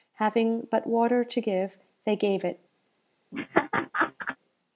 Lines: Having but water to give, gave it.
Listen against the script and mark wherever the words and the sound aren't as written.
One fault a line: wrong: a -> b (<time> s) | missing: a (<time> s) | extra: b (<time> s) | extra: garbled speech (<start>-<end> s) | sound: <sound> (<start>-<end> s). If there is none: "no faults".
extra: they (2.0 s)
sound: laugh (3.3-4.4 s)